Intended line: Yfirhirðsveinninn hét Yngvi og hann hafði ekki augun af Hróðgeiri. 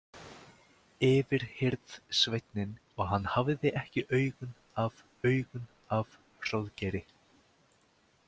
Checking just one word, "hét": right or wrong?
wrong